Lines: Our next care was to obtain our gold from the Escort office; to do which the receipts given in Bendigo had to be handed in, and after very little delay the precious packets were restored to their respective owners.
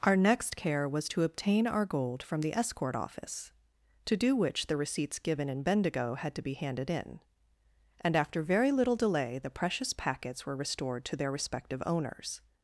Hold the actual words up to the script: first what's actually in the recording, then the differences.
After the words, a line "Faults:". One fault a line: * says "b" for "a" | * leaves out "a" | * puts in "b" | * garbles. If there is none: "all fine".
Our next care was to obtain our gold from the Escort office; to do which the receipts given in Bendigo had to be handed in, and after very little delay the precious packets were restored to their respective owners.
Faults:
all fine